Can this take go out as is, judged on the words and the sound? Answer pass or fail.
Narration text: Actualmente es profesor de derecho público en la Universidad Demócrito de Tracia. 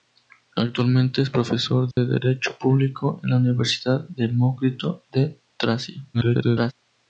fail